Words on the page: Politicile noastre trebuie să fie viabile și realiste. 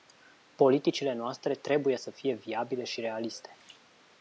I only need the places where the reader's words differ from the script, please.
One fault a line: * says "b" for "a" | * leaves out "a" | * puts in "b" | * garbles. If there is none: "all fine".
all fine